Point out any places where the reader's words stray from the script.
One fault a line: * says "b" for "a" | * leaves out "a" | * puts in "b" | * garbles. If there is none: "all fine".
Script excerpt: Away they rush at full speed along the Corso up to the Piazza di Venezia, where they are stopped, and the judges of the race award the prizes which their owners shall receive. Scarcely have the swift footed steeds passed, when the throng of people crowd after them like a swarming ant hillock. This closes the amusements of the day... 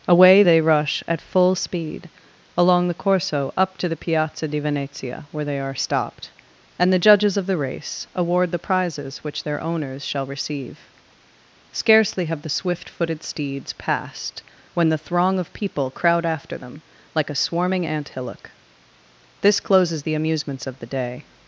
all fine